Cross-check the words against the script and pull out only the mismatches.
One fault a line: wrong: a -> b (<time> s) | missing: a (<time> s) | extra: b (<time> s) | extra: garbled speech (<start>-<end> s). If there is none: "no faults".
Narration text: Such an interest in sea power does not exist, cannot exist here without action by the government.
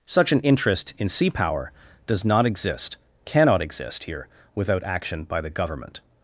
no faults